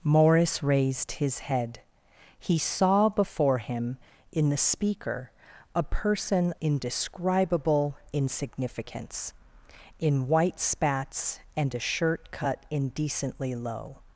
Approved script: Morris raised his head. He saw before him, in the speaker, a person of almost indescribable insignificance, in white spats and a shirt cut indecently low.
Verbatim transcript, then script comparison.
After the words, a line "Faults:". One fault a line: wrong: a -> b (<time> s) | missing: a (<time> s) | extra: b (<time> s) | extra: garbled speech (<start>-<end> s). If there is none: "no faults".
Morris raised his head. He saw before him, in the speaker, a person indescribable insignificance, in white spats and a shirt cut indecently low.
Faults:
missing: of almost (6.5 s)